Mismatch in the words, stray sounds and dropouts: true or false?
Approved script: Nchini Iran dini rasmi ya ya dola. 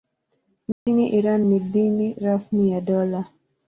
true